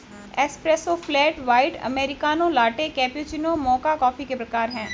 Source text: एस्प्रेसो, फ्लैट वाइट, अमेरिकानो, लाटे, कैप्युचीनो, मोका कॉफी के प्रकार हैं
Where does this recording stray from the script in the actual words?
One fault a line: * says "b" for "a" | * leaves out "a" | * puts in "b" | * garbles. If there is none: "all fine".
all fine